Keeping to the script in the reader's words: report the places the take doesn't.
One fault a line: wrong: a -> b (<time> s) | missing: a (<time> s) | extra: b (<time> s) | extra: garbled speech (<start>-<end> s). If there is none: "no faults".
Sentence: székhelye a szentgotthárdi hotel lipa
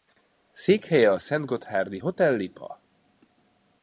no faults